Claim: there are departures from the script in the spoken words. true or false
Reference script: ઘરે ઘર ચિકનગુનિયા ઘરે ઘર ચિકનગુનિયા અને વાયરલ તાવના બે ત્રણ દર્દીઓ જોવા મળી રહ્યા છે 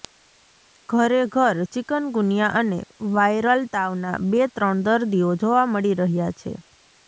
true